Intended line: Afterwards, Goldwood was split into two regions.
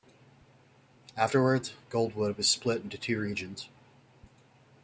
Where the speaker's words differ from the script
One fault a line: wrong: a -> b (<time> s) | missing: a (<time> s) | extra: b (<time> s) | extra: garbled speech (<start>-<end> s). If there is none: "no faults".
no faults